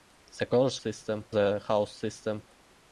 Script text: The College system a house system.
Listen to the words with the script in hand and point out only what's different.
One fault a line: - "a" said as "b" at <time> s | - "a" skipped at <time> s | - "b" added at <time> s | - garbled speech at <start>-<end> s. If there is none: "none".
none